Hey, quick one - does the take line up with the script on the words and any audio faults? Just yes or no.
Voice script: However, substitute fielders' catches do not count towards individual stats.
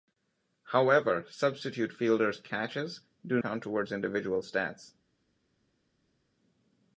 no